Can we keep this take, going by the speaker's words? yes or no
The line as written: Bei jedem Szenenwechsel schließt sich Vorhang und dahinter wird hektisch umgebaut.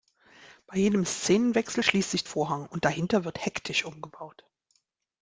yes